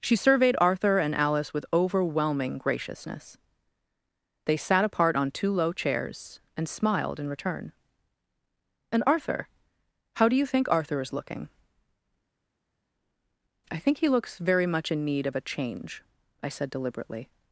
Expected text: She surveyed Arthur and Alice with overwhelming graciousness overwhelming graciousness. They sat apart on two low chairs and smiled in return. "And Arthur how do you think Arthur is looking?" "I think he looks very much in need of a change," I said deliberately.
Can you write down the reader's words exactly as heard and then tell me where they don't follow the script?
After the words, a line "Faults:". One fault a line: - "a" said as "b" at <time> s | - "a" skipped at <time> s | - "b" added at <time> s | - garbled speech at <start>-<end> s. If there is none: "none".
She surveyed Arthur and Alice with overwhelming graciousness. They sat apart on two low chairs and smiled in return. "And Arthur how do you think Arthur is looking?" "I think he looks very much in need of a change," I said deliberately.
Faults:
- "overwhelming graciousness" skipped at 3.4 s